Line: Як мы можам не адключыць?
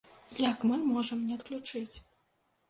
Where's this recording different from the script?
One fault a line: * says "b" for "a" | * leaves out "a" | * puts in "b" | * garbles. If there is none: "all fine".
all fine